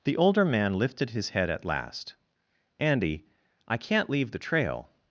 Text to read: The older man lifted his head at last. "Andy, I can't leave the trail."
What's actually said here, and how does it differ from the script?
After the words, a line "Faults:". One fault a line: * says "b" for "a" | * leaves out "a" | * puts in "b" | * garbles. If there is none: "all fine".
The older man lifted his head at last. "Andy, I can't leave the trail."
Faults:
all fine